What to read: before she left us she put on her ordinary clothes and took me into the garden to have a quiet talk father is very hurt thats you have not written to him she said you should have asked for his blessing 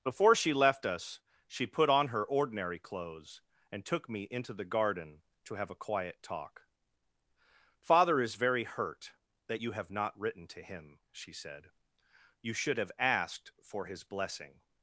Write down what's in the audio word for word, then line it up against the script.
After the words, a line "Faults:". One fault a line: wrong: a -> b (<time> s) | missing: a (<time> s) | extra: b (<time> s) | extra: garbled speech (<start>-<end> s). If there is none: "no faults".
before she left us she put on her ordinary clothes and took me into the garden to have a quiet talk father is very hurt that you have not written to him she said you should have asked for his blessing
Faults:
wrong: thats -> that (9.4 s)